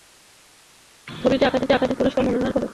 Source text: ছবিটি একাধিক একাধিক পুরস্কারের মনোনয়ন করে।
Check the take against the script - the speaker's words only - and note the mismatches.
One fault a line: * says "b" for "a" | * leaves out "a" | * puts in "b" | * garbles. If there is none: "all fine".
all fine